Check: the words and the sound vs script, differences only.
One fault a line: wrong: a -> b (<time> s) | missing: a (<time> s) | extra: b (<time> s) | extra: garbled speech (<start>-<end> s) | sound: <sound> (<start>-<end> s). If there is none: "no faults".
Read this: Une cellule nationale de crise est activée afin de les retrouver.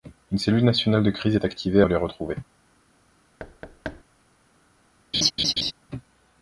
missing: afin (1.8 s)
sound: thud (3.4-4.0 s)
sound: laugh (5.1-5.7 s)